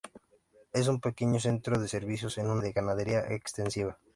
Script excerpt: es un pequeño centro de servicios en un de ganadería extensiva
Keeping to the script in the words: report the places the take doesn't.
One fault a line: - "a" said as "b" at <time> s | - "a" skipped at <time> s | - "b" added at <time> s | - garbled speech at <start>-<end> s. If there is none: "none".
none